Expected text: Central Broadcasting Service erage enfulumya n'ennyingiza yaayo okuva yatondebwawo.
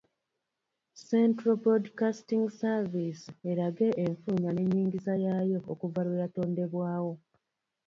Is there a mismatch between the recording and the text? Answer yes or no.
yes